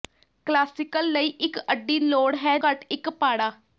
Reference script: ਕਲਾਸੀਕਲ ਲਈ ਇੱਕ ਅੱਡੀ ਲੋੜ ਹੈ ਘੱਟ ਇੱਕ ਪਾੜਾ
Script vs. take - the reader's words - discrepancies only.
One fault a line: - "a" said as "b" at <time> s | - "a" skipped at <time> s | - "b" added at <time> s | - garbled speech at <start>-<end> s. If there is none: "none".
none